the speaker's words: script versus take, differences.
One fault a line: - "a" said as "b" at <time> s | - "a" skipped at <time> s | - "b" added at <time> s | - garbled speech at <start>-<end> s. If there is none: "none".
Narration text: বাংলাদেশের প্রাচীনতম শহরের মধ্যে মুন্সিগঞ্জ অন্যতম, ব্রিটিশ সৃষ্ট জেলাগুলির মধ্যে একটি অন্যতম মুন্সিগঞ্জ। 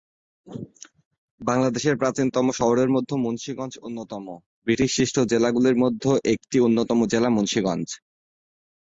- "জেলা" added at 7.0 s